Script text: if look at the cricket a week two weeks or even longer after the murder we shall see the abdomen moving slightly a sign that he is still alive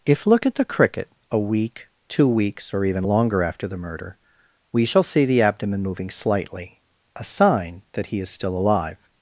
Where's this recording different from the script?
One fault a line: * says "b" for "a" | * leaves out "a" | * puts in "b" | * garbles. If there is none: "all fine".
all fine